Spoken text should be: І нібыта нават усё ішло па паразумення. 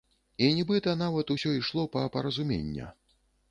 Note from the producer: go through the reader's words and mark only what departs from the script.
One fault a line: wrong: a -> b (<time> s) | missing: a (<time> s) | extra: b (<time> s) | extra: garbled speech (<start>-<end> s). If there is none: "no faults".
no faults